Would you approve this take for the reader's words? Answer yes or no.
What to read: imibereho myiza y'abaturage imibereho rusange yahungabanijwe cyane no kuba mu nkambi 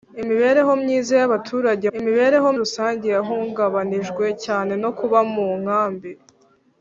yes